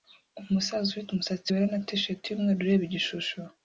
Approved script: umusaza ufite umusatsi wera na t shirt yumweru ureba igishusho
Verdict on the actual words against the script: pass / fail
pass